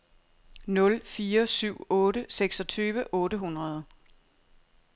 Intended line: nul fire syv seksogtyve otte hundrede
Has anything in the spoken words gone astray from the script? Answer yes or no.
yes